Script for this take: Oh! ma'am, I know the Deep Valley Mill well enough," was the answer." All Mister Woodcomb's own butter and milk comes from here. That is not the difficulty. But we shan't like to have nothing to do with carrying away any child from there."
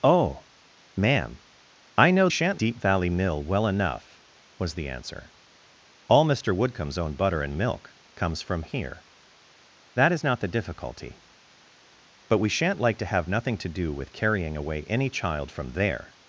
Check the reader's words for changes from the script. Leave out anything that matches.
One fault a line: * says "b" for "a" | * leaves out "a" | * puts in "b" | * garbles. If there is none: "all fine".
* says "shan't" for "the"